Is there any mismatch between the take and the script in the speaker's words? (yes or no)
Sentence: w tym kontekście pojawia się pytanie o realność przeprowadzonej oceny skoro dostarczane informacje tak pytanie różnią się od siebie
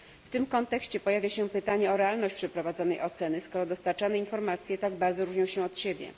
yes